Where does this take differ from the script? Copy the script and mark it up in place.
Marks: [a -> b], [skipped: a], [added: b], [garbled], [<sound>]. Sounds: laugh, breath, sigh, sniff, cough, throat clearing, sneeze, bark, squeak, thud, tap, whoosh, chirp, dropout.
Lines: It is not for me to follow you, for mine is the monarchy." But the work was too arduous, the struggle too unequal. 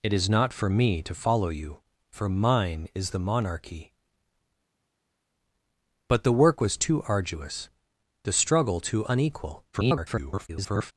It is not for me to follow you, for mine is the monarchy." But the work was too arduous, the struggle too unequal. [garbled]